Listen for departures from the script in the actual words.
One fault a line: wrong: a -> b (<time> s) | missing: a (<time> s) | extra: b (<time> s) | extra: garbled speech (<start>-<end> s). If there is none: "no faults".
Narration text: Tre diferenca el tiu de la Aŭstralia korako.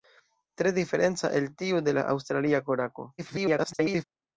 extra: garbled speech (3.2-4.0 s)